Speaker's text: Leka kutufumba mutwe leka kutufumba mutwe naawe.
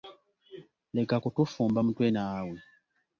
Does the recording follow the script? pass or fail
fail